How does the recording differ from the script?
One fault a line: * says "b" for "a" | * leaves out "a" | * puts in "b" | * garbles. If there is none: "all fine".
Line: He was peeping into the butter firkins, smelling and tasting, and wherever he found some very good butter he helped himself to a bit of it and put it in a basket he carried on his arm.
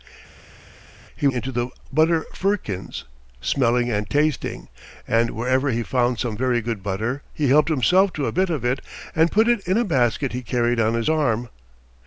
* leaves out "was peeping"